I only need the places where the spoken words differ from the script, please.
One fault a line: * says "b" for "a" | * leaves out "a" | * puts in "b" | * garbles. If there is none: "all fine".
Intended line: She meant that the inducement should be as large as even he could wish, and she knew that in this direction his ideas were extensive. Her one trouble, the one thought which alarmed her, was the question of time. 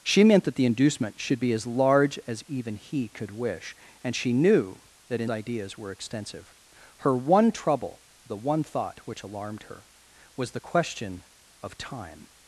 * leaves out "this direction his"